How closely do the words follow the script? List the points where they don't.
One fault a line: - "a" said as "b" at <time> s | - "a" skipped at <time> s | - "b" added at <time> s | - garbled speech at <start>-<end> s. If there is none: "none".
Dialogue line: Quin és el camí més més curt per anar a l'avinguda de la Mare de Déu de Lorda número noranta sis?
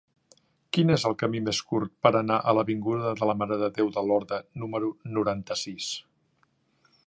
- "més" skipped at 1.6 s